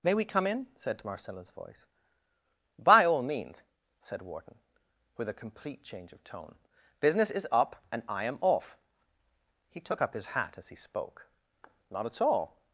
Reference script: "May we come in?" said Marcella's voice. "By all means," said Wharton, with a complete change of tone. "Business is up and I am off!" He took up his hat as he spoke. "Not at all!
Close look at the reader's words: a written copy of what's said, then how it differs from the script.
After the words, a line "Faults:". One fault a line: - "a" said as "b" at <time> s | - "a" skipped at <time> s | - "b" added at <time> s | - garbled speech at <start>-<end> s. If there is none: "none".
"May we come in?" said Marcella's voice. "By all means," said Wharton, with a complete change of tone. "Business is up and I am off!" He took up his hat as he spoke. "Not at all!
Faults:
none